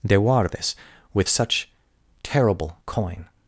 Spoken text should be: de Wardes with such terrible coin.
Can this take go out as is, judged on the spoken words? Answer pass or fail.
pass